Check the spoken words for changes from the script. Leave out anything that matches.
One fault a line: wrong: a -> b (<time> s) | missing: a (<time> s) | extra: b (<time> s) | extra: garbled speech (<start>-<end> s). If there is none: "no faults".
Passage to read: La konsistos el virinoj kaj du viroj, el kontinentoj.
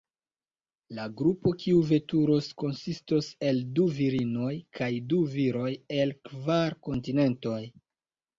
extra: grupo kiu veturos (1.2 s)
extra: du (3.8 s)
extra: kvar (6.3 s)